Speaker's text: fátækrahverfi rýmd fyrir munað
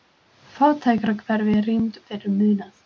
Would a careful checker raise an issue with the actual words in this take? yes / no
no